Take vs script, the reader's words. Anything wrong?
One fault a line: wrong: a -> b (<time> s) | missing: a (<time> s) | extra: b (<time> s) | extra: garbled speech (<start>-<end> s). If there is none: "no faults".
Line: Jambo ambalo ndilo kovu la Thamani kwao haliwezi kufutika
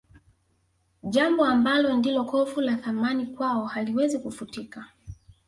no faults